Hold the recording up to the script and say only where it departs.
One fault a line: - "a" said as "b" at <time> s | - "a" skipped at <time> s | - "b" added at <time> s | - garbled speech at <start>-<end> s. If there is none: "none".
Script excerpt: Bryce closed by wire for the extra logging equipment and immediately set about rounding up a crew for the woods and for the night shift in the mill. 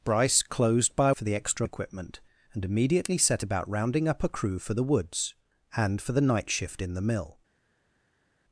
- "wire" skipped at 1.1 s
- "logging" skipped at 1.7 s